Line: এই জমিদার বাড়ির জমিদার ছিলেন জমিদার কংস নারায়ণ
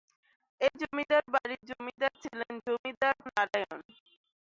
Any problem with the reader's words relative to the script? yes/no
yes